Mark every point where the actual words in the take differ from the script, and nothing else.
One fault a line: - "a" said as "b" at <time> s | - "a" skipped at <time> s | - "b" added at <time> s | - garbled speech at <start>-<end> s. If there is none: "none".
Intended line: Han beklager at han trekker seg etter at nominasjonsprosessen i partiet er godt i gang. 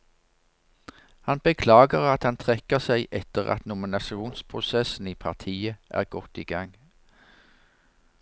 none